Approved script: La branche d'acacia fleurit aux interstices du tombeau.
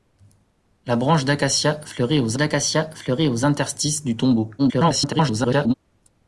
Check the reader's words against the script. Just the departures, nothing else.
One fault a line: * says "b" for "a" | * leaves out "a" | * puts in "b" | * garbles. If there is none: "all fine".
* puts in "d'acacia fleurit aux"
* garbles